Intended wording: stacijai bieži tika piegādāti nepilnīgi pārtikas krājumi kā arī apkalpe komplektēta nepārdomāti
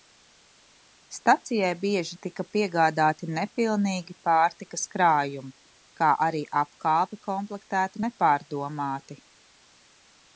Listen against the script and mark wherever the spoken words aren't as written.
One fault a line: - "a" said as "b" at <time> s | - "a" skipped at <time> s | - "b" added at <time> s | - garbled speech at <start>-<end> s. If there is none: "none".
none